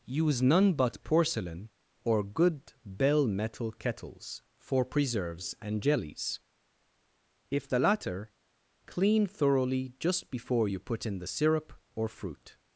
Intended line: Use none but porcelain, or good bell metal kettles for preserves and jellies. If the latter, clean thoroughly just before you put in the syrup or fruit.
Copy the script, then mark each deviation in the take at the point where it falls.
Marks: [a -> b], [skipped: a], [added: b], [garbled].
Use none but porcelain, or good bell metal kettles for preserves and jellies. If the latter, clean thoroughly just before you put in the syrup or fruit.